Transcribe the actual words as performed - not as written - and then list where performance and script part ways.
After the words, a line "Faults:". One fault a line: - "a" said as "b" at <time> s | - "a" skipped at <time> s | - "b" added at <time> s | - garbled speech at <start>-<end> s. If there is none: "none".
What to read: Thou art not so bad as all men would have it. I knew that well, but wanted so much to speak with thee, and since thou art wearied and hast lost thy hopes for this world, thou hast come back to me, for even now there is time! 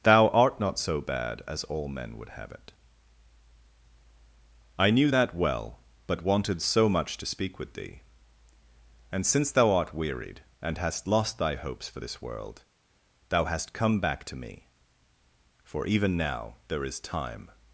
Thou art not so bad as all men would have it. I knew that well, but wanted so much to speak with thee, and since thou art wearied and hast lost thy hopes for this world, thou hast come back to me, for even now there is time!
Faults:
none